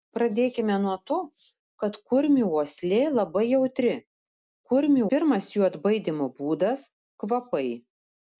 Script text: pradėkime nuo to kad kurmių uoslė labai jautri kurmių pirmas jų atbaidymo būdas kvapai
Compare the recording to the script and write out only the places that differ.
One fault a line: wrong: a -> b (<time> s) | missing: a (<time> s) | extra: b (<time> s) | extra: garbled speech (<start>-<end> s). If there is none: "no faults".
no faults